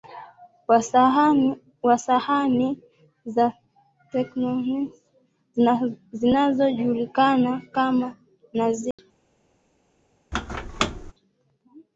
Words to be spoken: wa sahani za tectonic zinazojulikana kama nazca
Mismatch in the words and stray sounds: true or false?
true